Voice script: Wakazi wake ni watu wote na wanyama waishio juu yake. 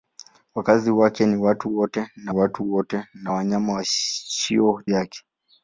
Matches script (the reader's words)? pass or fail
fail